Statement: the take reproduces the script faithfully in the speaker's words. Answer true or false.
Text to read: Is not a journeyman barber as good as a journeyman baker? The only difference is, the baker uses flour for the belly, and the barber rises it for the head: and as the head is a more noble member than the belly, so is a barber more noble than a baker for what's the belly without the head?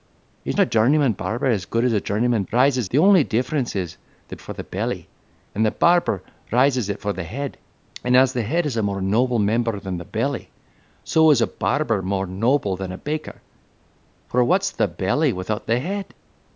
false